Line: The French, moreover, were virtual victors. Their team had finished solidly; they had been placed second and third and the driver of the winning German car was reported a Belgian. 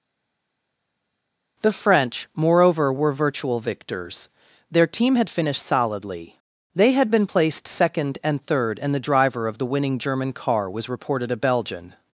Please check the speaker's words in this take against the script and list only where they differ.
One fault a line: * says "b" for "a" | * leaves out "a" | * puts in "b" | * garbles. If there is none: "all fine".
all fine